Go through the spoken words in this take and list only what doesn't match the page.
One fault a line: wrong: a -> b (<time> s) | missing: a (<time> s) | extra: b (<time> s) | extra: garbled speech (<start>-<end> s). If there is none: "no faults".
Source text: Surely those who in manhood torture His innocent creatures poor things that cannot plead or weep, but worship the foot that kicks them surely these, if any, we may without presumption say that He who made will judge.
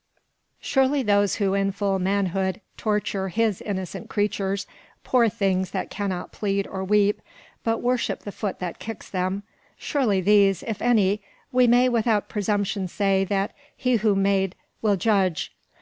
extra: full (1.7 s)